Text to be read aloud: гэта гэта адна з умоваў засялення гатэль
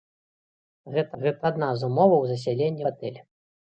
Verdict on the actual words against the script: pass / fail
pass